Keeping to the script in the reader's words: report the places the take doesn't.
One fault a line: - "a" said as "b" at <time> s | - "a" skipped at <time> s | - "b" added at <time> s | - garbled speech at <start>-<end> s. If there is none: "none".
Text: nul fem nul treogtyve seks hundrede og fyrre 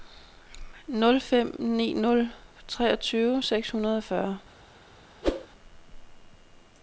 - "ni" added at 1.6 s